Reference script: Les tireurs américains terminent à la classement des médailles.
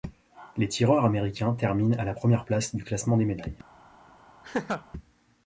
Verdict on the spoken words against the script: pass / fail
fail